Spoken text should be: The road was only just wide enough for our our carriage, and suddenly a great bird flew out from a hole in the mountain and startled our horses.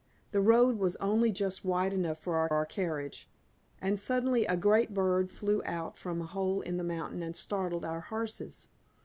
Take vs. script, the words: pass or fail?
pass